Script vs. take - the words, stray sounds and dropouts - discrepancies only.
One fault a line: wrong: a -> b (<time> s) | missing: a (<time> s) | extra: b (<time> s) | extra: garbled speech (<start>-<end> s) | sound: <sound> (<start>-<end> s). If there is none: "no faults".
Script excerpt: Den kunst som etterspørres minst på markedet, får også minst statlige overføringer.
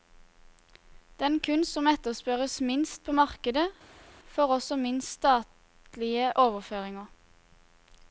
no faults